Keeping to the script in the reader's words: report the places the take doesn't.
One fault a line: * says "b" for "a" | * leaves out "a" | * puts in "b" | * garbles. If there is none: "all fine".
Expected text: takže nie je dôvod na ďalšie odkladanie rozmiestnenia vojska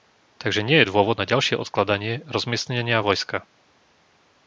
all fine